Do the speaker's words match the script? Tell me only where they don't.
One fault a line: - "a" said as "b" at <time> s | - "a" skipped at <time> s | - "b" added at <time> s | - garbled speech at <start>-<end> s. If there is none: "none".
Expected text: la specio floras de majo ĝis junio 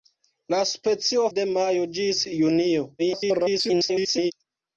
- "floras" skipped at 1.3 s
- garbled speech at 3.0-4.3 s